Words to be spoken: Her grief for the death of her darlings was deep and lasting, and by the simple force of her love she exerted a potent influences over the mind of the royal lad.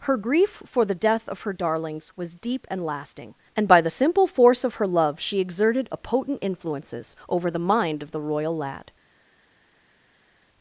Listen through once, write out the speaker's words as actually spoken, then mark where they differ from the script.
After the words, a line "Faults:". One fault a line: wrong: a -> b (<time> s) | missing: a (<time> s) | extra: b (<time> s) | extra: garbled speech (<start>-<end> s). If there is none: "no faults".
Her grief for the death of her darlings was deep and lasting, and by the simple force of her love she exerted a potent influences over the mind of the royal lad.
Faults:
no faults